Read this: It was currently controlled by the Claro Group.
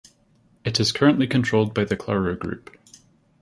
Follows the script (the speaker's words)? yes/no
no